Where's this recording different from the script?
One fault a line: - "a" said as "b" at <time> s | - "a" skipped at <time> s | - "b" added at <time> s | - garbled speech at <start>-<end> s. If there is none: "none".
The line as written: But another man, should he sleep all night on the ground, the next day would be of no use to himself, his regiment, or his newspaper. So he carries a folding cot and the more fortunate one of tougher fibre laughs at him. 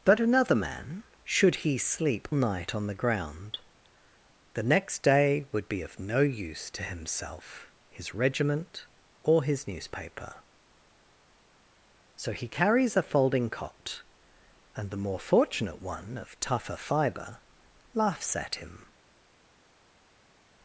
- "all" skipped at 2.3 s